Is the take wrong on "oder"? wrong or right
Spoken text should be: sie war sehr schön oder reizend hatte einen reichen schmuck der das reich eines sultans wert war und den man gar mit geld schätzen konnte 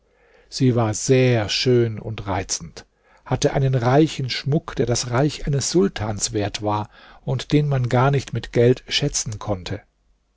wrong